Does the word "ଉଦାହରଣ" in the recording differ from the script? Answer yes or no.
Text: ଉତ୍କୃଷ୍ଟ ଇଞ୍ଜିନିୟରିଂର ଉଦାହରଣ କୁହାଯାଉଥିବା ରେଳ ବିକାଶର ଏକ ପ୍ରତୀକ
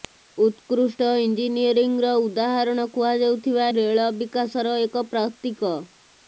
no